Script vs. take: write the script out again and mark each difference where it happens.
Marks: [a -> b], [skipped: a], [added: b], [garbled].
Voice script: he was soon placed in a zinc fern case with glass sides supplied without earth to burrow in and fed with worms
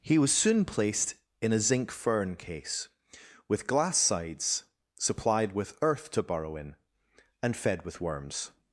he was soon placed in a zinc fern case with glass sides supplied [without -> with] earth to burrow in and fed with worms